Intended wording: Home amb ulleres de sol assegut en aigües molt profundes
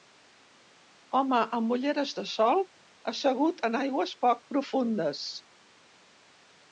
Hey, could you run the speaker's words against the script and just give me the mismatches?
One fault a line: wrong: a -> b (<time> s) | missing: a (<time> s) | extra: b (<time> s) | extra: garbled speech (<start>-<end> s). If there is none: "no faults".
wrong: molt -> poc (4.3 s)